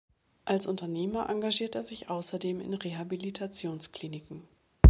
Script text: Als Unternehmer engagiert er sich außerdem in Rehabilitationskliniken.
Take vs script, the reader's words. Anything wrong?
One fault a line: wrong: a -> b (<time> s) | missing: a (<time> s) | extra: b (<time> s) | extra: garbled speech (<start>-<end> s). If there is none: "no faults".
no faults